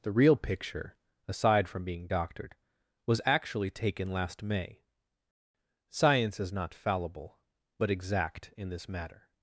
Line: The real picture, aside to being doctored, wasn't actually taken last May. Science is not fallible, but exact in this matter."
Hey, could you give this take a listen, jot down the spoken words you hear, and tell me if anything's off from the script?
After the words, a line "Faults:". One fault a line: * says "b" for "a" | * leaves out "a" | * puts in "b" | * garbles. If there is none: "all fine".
The real picture, aside from being doctored, was actually taken last May. Science is not fallible, but exact in this matter."
Faults:
* says "from" for "to"
* says "was" for "wasn't"